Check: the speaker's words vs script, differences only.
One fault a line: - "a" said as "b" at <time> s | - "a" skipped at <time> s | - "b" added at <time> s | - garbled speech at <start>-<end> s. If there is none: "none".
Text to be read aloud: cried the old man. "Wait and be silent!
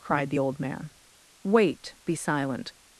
- "and" skipped at 1.9 s